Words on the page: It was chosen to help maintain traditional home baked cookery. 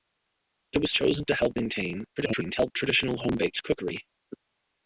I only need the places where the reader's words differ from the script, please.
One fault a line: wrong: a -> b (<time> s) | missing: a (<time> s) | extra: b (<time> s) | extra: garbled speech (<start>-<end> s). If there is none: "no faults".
extra: garbled speech (2.2-2.7 s)